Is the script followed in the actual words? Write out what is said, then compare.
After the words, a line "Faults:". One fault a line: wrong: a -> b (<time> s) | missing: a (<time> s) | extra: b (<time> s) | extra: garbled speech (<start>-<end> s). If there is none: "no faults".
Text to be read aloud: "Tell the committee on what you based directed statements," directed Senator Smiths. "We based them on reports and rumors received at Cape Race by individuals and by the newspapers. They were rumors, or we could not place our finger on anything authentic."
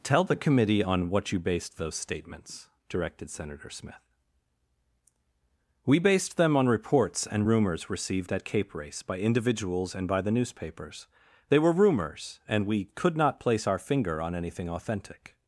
"Tell the committee on what you based those statements," directed Senator Smith. "We based them on reports and rumors received at Cape Race by individuals and by the newspapers. They were rumors, and we could not place our finger on anything authentic."
Faults:
wrong: directed -> those (1.8 s)
wrong: Smiths -> Smith (3.7 s)
wrong: or -> and (12.5 s)